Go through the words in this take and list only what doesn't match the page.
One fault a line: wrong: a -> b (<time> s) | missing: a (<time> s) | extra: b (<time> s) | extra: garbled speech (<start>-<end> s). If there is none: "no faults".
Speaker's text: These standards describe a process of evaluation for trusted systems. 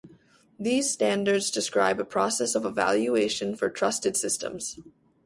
no faults